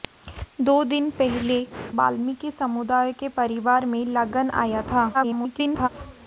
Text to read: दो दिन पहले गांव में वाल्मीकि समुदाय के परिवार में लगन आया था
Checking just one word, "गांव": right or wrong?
wrong